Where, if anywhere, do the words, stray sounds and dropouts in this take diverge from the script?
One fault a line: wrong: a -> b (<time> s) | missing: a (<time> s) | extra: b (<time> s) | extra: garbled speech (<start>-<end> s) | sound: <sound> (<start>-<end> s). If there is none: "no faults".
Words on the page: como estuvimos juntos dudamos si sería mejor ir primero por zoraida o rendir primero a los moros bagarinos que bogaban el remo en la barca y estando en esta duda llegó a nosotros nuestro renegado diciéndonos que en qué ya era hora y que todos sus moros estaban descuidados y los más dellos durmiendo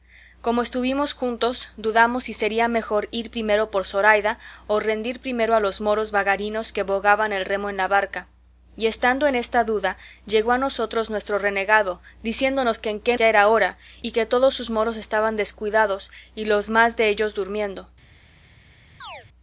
sound: chirp (19.0-19.3 s)